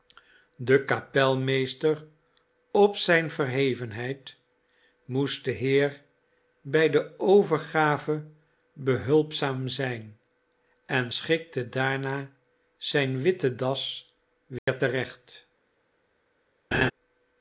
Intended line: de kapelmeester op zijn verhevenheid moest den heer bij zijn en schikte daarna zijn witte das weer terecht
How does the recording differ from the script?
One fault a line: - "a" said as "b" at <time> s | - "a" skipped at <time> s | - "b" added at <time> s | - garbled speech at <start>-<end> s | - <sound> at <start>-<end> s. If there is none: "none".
- "de overgave behulpzaam" added at 6.9 s
- dropout at 14.6-14.7 s
- laugh at 16.7-16.9 s